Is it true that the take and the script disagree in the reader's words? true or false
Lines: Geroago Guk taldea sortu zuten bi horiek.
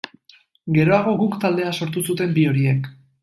false